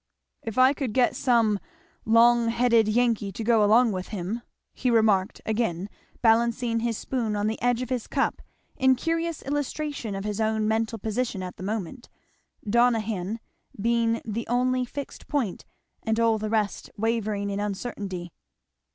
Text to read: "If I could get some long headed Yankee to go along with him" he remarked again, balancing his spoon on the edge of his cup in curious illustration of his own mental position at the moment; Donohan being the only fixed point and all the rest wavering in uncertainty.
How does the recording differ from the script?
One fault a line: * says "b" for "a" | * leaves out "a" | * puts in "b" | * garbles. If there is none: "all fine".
all fine